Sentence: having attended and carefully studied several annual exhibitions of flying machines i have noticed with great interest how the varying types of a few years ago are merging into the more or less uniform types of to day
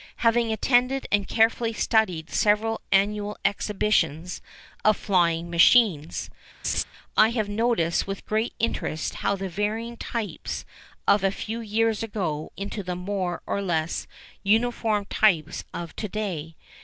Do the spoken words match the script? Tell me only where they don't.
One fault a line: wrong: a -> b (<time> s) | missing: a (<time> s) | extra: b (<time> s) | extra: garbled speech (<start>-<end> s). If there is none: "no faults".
missing: are merging (12.5 s)